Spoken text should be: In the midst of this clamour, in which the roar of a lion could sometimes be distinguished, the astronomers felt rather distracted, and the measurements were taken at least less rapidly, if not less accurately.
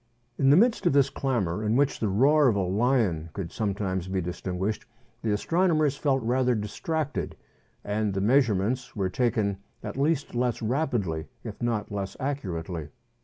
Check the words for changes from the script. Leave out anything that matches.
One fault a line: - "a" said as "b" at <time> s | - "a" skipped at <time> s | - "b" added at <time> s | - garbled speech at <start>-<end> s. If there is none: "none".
none